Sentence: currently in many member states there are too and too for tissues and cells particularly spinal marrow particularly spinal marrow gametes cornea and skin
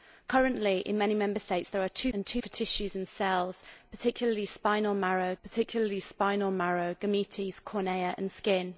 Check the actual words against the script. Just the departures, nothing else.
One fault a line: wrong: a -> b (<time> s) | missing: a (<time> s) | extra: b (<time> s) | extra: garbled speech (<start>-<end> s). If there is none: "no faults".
no faults